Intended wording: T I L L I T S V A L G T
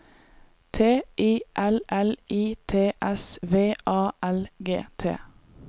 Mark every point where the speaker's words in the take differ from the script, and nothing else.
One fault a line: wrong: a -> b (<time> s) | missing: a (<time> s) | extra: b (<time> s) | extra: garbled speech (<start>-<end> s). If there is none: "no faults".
no faults